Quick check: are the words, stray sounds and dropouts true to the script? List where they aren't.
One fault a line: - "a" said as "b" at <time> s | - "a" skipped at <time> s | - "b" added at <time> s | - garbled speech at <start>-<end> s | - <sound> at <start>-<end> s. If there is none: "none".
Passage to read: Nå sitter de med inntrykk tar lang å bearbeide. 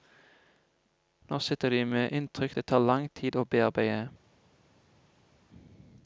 - "det" added at 2.5 s
- "tid" added at 3.1 s